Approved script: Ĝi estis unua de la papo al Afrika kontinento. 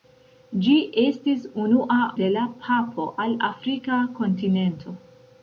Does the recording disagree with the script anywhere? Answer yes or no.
no